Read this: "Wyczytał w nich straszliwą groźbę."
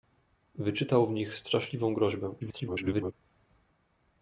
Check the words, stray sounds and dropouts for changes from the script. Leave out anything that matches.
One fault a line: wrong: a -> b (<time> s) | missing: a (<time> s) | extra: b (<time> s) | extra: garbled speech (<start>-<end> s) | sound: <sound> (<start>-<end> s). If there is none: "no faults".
extra: garbled speech (2.4-3.1 s)